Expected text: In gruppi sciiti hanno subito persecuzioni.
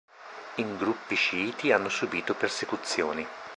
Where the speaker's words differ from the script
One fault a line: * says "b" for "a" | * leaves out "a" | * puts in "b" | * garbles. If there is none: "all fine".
all fine